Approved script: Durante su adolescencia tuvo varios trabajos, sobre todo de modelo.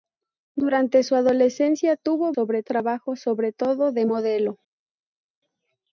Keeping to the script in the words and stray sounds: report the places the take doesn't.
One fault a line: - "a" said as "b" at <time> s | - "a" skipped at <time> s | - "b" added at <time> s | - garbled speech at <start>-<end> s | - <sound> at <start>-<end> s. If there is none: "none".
- "varios" said as "sobre" at 2.3 s